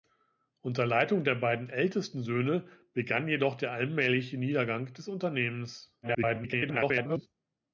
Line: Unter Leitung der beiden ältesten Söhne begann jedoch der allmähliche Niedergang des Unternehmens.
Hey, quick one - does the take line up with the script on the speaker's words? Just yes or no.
no